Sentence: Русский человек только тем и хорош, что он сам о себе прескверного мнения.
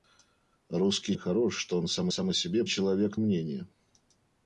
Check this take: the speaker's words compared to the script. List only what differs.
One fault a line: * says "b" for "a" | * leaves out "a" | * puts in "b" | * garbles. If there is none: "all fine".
* leaves out "человек только тем"
* puts in "сам"
* says "человек" for "прескверного"